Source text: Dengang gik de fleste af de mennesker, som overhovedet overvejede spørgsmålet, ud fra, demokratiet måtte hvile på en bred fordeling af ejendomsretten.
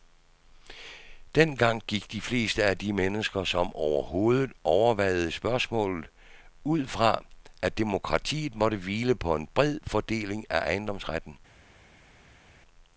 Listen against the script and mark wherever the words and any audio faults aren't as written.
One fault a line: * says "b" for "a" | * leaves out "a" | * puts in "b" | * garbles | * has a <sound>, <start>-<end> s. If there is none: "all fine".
* puts in "at"